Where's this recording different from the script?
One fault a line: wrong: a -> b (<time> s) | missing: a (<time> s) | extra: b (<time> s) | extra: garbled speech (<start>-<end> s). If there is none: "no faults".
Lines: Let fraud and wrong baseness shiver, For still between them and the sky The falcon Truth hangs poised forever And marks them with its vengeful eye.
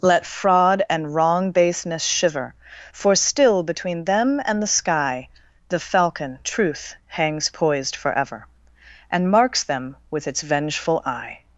no faults